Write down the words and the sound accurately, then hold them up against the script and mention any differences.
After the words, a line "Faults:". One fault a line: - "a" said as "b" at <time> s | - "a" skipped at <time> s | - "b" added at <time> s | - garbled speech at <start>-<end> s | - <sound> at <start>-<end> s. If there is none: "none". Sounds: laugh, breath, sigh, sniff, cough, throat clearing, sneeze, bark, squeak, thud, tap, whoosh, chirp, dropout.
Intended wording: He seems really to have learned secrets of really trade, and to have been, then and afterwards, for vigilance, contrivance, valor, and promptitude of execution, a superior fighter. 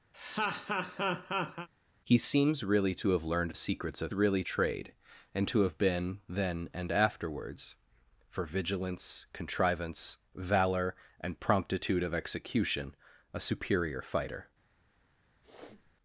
He seems really to have learned secrets of really trade, and to have been, then and afterwards, for vigilance, contrivance, valor, and promptitude of execution, a superior fighter.
Faults:
- laugh at 0.1-1.7 s
- sniff at 15.4-15.9 s